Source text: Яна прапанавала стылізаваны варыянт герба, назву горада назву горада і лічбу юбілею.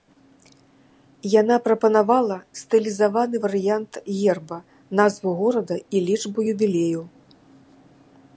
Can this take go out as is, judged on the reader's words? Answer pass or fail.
fail